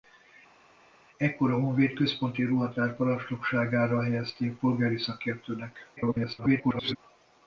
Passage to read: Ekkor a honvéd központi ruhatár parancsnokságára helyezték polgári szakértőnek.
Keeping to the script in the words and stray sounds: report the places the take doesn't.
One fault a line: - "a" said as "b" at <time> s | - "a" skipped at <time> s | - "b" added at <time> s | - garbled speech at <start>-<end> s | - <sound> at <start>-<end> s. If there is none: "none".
- garbled speech at 6.0-7.0 s